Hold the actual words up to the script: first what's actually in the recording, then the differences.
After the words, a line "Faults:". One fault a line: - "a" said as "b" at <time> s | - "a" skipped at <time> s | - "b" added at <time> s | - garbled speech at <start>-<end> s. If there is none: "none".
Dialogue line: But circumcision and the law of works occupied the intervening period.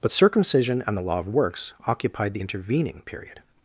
But circumcision and the law of works occupied the intervening period.
Faults:
none